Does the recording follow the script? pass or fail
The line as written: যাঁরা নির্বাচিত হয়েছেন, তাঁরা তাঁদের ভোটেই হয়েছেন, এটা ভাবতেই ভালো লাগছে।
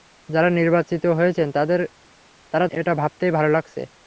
fail